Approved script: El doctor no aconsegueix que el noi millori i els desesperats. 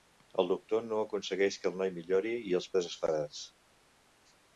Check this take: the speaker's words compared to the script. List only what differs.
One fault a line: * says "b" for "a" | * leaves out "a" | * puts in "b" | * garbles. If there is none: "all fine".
all fine